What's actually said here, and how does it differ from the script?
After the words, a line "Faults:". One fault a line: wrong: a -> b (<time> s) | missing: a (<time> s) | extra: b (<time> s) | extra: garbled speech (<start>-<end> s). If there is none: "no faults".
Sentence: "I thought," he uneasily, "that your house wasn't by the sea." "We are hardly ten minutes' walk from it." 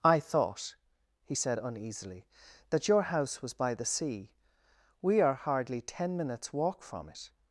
"I thought," he said uneasily, "that your house was by the sea." "We are hardly ten minutes' walk from it."
Faults:
extra: said (1.3 s)
wrong: wasn't -> was (3.4 s)